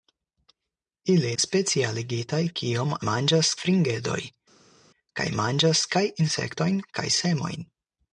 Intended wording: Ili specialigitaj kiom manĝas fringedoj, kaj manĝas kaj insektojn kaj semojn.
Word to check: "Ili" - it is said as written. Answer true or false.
true